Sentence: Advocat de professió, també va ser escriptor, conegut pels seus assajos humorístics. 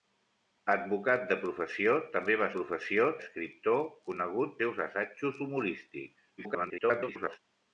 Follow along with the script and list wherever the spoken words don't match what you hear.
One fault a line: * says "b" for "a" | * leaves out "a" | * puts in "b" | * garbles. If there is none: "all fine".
* says "professió" for "ser"
* leaves out "pels"
* garbles